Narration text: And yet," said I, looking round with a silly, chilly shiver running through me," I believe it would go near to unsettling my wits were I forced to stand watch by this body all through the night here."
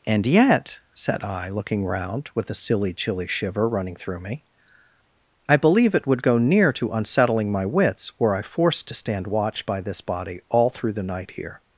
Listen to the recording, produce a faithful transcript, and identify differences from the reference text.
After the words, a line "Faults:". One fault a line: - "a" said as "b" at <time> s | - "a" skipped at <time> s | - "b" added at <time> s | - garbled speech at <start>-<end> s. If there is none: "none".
And yet," said I, looking round with a silly, chilly shiver running through me," I believe it would go near to unsettling my wits were I forced to stand watch by this body all through the night here."
Faults:
none